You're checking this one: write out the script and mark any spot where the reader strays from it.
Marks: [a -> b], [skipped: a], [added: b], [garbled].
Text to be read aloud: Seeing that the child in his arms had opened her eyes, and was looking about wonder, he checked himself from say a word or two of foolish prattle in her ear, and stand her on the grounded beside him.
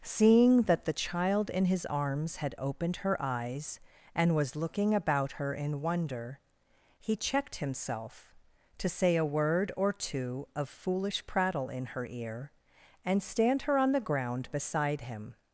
Seeing that the child in his arms had opened her eyes, and was looking about [added: her in] wonder, he checked himself [from -> to] say a word or two of foolish prattle in her ear, and stand her on the [grounded -> ground] beside him.